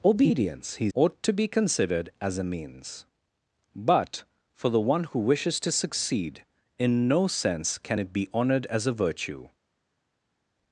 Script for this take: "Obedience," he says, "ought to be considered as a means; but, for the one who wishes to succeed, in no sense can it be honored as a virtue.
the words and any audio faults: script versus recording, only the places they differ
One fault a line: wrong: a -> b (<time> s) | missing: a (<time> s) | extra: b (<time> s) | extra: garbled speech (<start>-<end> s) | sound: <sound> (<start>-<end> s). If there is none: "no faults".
missing: says (0.9 s)